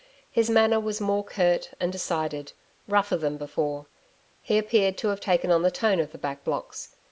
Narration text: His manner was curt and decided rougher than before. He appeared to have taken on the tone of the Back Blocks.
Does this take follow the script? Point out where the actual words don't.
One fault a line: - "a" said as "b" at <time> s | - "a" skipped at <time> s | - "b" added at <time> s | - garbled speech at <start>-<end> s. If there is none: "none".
- "more" added at 1.0 s